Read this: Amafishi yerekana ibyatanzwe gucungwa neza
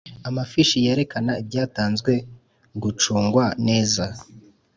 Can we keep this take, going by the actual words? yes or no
yes